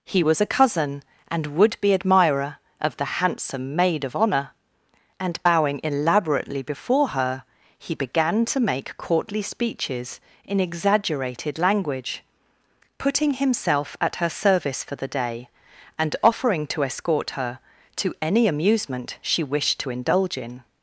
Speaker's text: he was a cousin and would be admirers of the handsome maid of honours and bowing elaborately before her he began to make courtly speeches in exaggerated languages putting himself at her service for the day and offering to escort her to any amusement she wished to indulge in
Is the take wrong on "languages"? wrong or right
wrong